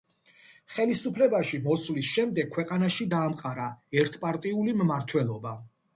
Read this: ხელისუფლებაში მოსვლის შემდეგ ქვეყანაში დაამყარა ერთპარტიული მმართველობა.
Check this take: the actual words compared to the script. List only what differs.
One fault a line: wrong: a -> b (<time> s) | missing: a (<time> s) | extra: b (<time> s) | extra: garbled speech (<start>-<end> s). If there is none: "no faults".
no faults